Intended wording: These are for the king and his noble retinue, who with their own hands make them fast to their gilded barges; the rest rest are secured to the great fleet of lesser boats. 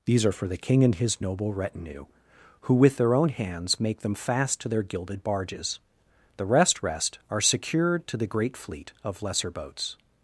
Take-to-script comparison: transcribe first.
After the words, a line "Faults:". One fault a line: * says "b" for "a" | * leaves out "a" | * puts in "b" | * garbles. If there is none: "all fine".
These are for the king and his noble retinue, who with their own hands make them fast to their gilded barges; the rest rest are secured to the great fleet of lesser boats.
Faults:
all fine